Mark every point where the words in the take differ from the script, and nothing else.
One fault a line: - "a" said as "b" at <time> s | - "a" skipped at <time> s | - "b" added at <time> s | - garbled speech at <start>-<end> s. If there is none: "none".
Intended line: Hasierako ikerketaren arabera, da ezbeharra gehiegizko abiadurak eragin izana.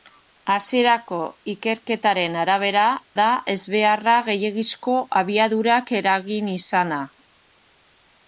none